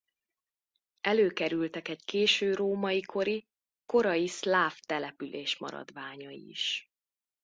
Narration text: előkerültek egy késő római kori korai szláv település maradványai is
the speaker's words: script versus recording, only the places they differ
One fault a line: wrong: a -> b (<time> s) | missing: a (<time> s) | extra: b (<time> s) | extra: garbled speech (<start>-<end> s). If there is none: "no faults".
no faults